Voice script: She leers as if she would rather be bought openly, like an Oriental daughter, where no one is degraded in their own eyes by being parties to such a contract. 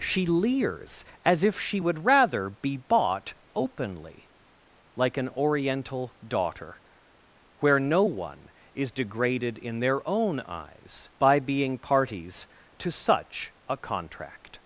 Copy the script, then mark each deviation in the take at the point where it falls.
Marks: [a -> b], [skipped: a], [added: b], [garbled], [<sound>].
She leers as if she would rather be bought openly, like an Oriental daughter, where no one is degraded in their own eyes by being parties to such a contract.